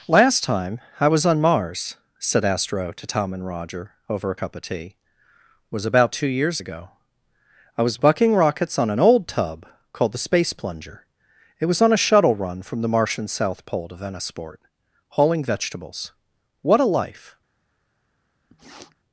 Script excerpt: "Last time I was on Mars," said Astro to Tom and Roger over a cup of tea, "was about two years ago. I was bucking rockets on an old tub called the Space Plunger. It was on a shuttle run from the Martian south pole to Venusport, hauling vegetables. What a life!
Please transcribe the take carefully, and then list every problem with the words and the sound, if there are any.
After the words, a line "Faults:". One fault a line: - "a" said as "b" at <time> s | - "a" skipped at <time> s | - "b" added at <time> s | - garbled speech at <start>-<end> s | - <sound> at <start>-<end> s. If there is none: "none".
"Last time I was on Mars," said Astro to Tom and Roger over a cup of tea, "was about two years ago. I was bucking rockets on an old tub called the Space Plunger. It was on a shuttle run from the Martian south pole to Venusport, hauling vegetables. What a life!
Faults:
- sniff at 18.5-19.0 s